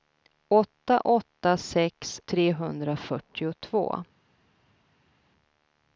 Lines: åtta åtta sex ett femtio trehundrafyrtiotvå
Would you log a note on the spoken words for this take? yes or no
yes